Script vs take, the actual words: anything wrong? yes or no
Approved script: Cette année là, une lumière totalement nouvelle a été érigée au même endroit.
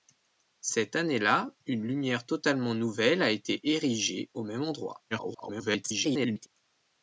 yes